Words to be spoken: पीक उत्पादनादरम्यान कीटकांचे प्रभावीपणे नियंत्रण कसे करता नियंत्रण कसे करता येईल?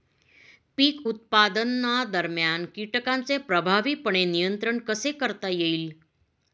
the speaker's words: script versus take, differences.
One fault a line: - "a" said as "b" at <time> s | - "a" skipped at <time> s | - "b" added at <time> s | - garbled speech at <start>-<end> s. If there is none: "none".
- "नियंत्रण कसे करता" skipped at 5.5 s